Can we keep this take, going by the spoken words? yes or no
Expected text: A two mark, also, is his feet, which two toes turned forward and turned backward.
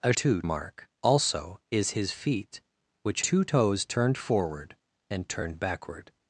yes